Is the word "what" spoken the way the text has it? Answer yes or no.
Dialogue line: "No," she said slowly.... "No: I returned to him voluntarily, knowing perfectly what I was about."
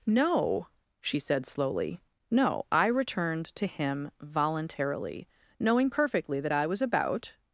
no